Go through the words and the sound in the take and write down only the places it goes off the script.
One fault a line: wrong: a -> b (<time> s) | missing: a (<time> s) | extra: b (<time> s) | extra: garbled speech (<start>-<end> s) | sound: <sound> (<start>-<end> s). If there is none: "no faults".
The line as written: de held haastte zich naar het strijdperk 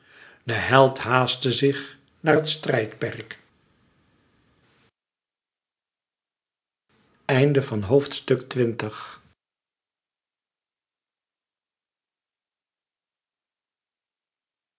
no faults